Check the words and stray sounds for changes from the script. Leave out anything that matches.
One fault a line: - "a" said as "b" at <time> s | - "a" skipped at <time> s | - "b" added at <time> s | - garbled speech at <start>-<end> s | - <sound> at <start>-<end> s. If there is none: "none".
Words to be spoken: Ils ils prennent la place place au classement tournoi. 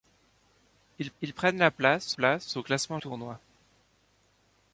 none